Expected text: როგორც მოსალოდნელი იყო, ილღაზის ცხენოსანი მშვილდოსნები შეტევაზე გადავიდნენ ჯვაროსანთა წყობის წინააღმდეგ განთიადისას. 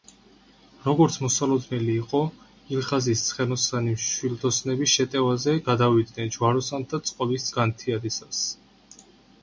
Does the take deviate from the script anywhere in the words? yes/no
yes